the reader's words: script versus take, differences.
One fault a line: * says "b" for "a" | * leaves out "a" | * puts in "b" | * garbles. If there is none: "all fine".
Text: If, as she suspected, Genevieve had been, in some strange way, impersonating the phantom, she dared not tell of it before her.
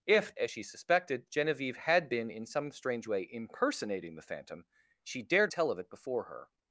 * leaves out "not"